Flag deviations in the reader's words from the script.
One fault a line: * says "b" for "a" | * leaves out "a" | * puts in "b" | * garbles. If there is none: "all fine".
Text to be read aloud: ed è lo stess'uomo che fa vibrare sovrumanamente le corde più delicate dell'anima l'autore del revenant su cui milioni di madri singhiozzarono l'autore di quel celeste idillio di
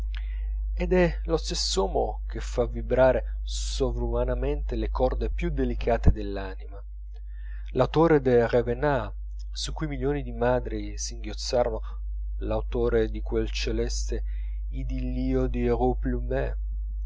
all fine